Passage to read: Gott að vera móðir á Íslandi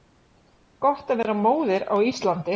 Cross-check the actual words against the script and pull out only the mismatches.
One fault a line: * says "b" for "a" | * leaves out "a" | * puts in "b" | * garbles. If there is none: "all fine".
all fine